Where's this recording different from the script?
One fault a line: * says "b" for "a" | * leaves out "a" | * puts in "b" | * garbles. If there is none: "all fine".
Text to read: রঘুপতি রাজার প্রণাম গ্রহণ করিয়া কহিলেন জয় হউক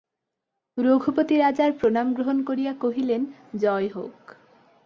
all fine